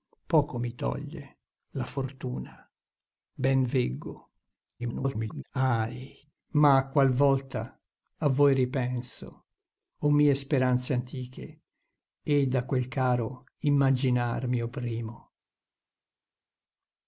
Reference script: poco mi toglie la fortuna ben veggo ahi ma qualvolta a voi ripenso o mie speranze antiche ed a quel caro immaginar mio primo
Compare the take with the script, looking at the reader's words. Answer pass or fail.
fail